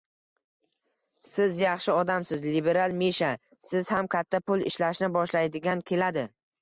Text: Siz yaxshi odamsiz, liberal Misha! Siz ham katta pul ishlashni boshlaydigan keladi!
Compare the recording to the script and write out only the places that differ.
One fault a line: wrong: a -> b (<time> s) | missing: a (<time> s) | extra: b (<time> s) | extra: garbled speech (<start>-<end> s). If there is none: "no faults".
no faults